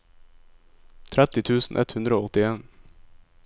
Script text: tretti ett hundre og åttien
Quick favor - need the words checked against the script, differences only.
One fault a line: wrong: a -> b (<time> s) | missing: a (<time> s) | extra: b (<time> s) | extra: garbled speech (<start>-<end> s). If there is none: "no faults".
extra: tusen (1.5 s)